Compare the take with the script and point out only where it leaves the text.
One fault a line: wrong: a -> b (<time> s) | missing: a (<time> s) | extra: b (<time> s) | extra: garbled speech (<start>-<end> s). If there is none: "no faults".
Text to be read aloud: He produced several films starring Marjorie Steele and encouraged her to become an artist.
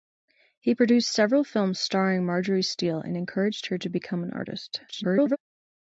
extra: garbled speech (4.9-5.4 s)